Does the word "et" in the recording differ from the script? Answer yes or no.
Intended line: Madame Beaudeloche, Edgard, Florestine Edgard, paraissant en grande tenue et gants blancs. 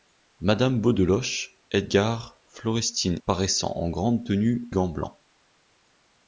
yes